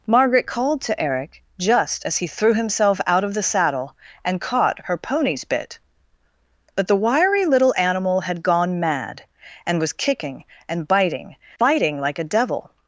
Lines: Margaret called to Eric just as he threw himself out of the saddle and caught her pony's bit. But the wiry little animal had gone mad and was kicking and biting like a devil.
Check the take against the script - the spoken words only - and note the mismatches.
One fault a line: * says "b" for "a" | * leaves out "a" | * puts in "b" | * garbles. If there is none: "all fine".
* puts in "biting"